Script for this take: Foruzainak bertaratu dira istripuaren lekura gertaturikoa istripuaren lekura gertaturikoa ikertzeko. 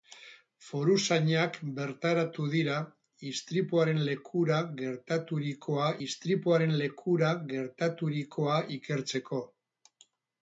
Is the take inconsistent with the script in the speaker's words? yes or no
no